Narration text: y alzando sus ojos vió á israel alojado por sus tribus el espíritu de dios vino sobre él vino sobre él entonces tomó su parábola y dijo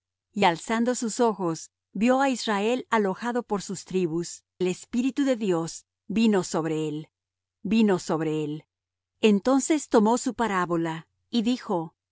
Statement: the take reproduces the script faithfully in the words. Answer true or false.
true